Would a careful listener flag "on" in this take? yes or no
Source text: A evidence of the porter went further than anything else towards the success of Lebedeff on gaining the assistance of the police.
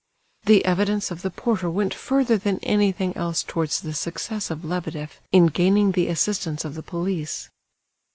yes